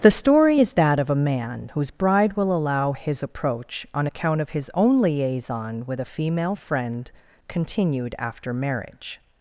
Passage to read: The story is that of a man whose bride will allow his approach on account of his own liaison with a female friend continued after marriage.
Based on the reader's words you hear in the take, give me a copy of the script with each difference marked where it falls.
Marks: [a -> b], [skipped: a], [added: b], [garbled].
The story is that of a man whose bride will allow his approach on account of his own liaison with a female friend continued after marriage.